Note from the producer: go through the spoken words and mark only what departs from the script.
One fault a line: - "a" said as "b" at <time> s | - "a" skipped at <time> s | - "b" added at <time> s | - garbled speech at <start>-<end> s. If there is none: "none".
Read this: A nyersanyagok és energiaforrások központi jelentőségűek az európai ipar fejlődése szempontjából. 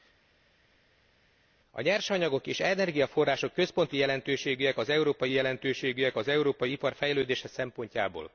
- "jelentőségűek az európai" added at 5.3 s